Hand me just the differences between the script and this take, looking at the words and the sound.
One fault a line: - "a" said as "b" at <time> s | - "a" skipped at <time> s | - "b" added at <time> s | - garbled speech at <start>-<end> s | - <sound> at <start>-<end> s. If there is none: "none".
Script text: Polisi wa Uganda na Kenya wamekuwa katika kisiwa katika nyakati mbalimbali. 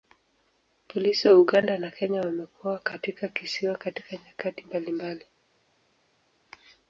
none